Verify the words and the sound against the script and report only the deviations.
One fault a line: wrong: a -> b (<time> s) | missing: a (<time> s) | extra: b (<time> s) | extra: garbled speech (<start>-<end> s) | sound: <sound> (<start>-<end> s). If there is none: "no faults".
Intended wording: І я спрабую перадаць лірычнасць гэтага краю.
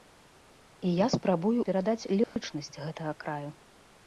sound: dropout (2.2-2.4 s)